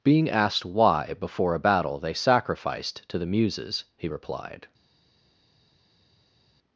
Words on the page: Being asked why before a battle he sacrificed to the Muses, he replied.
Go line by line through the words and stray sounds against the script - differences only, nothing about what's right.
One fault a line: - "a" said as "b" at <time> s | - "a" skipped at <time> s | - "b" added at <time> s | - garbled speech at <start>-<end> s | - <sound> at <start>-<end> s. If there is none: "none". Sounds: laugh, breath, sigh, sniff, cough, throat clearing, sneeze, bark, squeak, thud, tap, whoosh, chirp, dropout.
- "he" said as "they" at 2.0 s